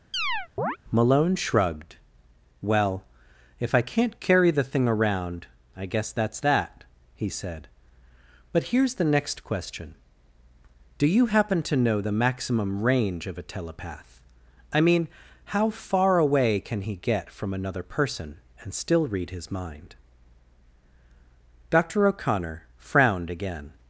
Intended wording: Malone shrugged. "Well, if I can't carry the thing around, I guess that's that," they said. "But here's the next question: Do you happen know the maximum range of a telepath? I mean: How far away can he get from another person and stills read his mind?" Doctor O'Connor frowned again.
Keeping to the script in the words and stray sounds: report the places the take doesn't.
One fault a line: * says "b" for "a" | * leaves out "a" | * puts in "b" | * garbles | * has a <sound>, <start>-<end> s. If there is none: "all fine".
* has a chirp, 0.1-0.8 s
* says "he" for "they"
* puts in "to"
* says "still" for "stills"